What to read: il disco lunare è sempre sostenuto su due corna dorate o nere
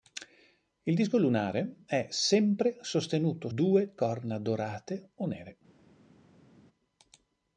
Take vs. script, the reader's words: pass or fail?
fail